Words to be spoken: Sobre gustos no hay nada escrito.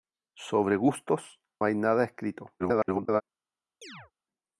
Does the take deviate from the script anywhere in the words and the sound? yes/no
yes